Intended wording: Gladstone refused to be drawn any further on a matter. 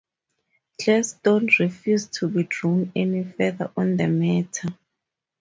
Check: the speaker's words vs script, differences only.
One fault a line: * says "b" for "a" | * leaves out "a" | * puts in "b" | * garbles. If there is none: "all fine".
* says "the" for "a"